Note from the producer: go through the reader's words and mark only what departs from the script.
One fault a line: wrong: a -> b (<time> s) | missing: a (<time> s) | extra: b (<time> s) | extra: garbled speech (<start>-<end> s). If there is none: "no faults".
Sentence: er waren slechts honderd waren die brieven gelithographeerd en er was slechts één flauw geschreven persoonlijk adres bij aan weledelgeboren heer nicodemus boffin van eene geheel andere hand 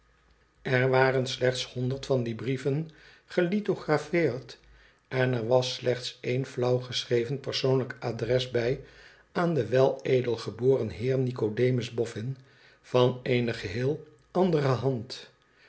wrong: waren -> van (2.0 s)
extra: den (9.5 s)